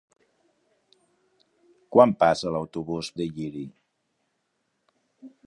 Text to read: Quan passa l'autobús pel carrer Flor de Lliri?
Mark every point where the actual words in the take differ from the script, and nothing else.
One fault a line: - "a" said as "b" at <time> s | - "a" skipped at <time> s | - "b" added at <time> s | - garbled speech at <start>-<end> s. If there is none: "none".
- "pel carrer Flor" skipped at 3.1 s